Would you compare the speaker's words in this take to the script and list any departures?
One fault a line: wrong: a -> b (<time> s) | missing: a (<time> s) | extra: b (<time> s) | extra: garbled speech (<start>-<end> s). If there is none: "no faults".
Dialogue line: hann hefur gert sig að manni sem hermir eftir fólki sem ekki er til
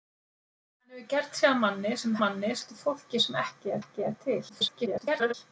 wrong: hermir -> manni (2.2 s)
extra: ekki (3.8 s)
extra: garbled speech (4.5-5.3 s)